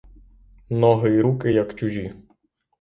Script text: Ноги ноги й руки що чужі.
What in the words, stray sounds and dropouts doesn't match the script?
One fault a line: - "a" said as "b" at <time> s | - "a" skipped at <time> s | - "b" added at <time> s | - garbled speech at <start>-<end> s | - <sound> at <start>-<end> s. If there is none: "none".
- "ноги" skipped at 1.1 s
- "що" said as "як" at 1.5 s